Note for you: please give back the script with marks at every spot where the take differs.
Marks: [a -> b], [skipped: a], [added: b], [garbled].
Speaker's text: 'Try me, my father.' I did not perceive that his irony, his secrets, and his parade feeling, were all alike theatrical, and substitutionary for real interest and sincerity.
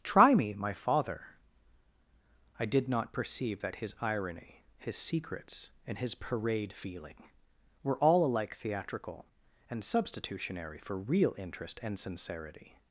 'Try me, my father.' I did not perceive that his irony, his secrets, and his parade feeling, were all alike theatrical, and substitutionary for real interest and sincerity.